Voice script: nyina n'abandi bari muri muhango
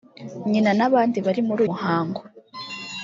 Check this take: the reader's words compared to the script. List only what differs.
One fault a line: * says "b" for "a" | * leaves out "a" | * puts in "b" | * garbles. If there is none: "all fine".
all fine